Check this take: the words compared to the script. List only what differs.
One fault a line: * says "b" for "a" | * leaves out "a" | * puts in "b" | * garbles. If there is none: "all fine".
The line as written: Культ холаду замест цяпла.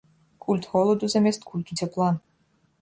* puts in "культу"